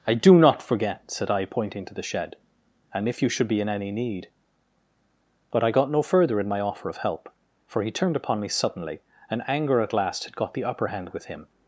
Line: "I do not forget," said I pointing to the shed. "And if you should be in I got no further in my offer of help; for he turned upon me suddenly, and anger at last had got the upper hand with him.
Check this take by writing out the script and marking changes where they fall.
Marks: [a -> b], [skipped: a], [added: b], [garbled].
"I do not forget," said I pointing to the shed. "And if you should be in [added: any need But] I got no further in my offer of help; for he turned upon me suddenly, and anger at last had got the upper hand with him.